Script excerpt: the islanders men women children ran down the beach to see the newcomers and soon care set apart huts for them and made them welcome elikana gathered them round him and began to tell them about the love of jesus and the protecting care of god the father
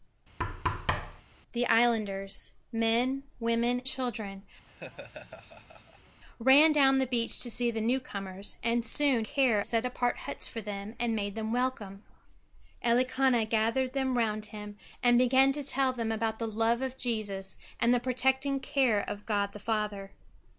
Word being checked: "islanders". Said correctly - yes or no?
yes